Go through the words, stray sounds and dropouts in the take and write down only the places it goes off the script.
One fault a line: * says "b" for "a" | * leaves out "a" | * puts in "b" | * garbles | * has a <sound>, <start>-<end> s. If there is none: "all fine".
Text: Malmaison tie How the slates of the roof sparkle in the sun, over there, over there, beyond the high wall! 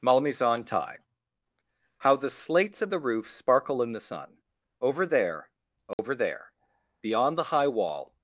* has a dropout, 5.9-6.0 s